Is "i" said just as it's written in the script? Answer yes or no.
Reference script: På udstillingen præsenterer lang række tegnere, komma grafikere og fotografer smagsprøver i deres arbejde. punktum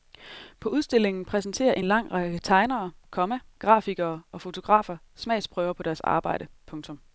no